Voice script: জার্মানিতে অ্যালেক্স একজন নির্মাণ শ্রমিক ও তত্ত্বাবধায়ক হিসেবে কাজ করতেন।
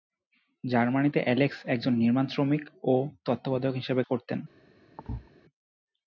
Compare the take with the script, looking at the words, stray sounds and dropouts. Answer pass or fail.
fail